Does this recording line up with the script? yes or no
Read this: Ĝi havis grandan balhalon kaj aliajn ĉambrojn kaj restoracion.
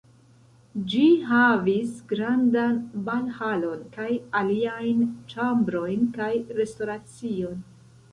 yes